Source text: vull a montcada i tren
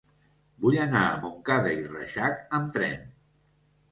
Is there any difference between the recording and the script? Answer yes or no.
yes